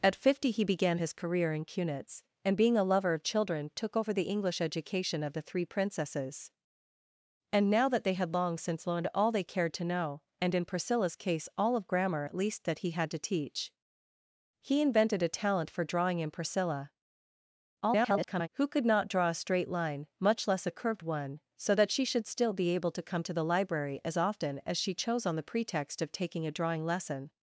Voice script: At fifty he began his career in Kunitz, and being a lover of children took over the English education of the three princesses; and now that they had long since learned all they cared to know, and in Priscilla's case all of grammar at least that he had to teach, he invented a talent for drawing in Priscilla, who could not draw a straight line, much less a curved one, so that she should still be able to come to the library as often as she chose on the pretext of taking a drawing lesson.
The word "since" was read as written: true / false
true